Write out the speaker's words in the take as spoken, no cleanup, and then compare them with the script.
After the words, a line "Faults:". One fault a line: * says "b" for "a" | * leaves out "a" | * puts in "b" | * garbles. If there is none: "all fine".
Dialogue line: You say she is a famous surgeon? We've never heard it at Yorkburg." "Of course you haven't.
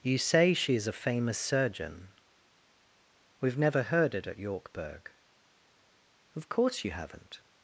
You say she is a famous surgeon? We've never heard it at Yorkburg." "Of course you haven't.
Faults:
all fine